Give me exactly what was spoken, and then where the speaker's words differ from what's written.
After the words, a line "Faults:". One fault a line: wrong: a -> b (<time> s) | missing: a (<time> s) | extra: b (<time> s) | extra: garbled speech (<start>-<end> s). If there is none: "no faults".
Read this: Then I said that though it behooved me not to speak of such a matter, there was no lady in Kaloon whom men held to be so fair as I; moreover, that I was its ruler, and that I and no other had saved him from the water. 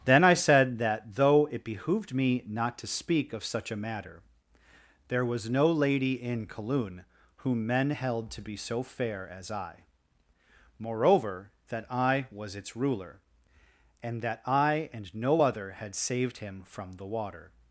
Then I said that though it behooved me not to speak of such a matter, there was no lady in Kaloon whom men held to be so fair as I; moreover, that I was its ruler, and that I and no other had saved him from the water.
Faults:
no faults